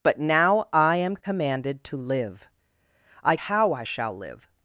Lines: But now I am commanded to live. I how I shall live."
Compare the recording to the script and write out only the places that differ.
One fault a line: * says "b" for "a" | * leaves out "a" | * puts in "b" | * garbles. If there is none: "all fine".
all fine